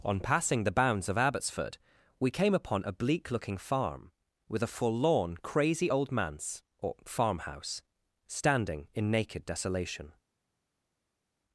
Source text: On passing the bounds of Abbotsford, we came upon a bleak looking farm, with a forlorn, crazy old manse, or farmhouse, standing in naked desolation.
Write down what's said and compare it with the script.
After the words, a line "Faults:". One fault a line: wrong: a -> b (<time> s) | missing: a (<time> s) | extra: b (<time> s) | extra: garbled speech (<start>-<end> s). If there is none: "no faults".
On passing the bounds of Abbotsford, we came upon a bleak looking farm, with a forlorn, crazy old manse, or farmhouse, standing in naked desolation.
Faults:
no faults